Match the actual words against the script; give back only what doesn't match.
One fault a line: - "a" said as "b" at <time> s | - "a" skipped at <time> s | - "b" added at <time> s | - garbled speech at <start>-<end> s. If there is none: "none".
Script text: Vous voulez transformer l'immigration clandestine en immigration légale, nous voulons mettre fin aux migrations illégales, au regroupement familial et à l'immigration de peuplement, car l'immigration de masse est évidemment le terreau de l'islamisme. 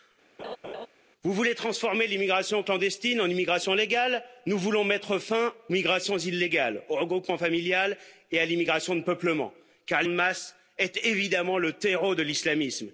- "aux" skipped at 5.5 s
- "l'immigration" skipped at 10.0 s